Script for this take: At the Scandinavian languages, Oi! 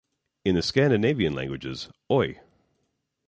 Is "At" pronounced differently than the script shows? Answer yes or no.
yes